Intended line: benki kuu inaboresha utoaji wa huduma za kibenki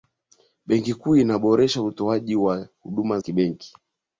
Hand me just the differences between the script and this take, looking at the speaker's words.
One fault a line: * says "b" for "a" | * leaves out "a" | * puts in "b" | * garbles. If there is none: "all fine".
* leaves out "za"